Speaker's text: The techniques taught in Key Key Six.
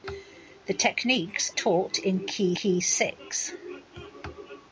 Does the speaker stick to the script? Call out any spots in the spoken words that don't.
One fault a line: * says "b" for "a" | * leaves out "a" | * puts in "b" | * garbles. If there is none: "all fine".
all fine